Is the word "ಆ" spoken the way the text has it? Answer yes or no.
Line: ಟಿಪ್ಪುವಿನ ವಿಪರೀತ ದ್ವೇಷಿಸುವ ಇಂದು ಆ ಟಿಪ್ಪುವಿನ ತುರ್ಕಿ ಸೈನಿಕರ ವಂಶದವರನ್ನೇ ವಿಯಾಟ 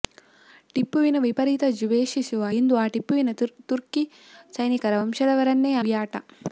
yes